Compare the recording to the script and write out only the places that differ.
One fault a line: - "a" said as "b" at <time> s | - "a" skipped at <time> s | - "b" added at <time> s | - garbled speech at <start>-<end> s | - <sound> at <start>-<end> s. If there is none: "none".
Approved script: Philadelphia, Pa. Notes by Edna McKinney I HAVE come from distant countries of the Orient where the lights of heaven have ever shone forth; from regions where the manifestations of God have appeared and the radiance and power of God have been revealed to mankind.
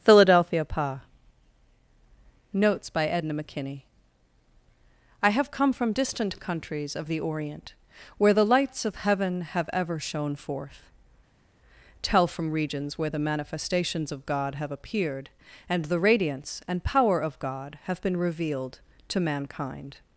- "tell" added at 12.0 s